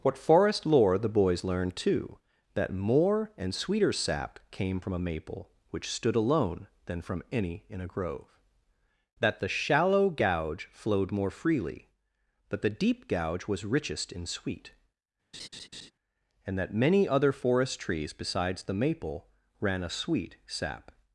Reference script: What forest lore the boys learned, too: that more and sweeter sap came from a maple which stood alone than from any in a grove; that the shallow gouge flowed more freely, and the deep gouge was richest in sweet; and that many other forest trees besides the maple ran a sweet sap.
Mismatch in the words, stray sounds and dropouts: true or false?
true